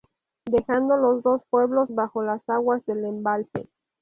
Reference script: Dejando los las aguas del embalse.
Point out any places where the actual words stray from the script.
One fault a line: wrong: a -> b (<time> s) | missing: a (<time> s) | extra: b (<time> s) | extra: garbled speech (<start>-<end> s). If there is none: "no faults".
extra: dos pueblos bajo (1.2 s)